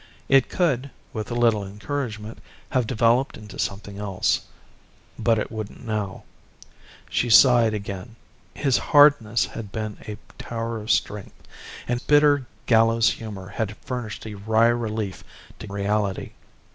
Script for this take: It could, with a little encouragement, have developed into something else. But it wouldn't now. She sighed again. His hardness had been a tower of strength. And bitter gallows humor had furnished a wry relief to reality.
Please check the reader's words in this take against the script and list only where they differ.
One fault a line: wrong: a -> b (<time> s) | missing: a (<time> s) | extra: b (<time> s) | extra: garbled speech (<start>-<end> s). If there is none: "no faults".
no faults